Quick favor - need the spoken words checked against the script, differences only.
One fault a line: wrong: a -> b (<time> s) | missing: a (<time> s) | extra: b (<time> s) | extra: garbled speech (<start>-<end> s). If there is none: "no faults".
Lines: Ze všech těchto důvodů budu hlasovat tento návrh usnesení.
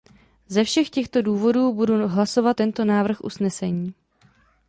no faults